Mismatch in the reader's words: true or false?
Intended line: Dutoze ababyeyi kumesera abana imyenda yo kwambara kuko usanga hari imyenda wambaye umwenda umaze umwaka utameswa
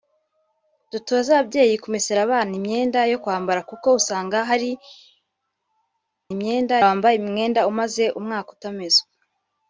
false